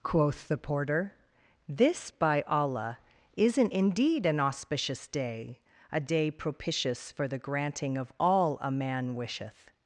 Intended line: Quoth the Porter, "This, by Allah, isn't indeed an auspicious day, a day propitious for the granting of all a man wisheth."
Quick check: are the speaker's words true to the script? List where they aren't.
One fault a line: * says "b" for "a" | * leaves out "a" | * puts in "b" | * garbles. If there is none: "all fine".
all fine